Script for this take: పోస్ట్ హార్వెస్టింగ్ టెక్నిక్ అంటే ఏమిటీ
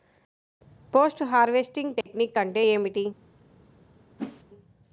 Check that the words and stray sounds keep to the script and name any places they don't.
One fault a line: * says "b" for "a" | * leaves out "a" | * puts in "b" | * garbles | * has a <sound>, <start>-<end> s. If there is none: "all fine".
* has a dropout, 2.0-2.1 s
* has a whoosh, 4.2-4.4 s